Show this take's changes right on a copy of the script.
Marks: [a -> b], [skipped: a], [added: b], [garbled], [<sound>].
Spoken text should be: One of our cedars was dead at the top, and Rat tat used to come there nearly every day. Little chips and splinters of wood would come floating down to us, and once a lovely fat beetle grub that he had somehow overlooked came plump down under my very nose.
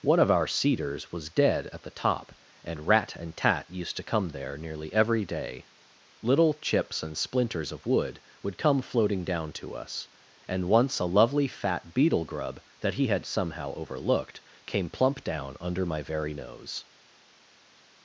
One of our cedars was dead at the top, and Rat [added: and] tat used to come there nearly every day. Little chips and splinters of wood would come floating down to us, and once a lovely fat beetle grub that he had somehow overlooked came plump down under my very nose.